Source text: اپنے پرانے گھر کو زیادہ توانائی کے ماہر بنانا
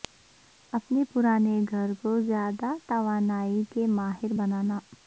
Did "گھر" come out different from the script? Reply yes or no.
no